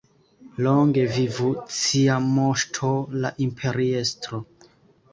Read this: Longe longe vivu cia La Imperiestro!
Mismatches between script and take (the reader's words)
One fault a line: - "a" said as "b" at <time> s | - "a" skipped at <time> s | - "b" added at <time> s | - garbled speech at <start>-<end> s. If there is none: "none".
- "longe" skipped at 1.0 s
- "Moŝto" added at 2.3 s